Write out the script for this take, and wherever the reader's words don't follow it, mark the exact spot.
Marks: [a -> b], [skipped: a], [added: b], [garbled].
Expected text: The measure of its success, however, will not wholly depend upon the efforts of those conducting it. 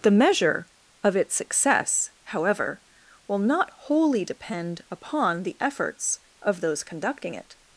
The measure of its success, however, will not wholly depend upon the efforts of those conducting it.